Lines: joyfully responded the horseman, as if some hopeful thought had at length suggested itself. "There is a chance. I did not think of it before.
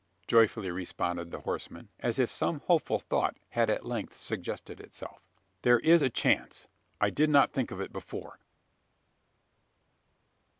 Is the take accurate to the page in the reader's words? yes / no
yes